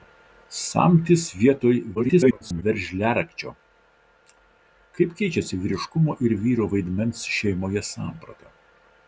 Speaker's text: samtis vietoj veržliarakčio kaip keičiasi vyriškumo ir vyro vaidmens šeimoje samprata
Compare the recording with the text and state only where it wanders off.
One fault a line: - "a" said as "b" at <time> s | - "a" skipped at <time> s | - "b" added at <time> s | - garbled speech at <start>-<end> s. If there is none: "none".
- garbled speech at 1.9-2.6 s